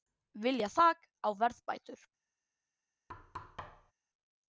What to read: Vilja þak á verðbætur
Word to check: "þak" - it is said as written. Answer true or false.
true